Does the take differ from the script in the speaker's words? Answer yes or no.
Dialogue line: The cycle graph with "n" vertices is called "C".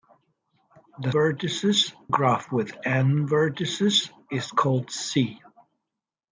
yes